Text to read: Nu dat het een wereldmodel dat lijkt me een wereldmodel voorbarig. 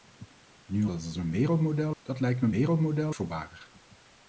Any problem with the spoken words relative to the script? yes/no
no